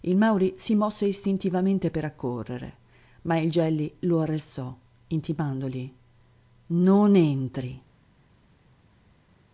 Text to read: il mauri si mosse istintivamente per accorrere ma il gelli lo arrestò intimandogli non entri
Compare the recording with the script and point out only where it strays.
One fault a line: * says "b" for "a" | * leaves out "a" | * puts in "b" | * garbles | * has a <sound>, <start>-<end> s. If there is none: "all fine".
all fine